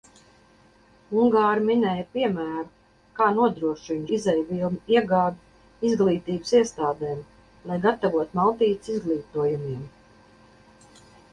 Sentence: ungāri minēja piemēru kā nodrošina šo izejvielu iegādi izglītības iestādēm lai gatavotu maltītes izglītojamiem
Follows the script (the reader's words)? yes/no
no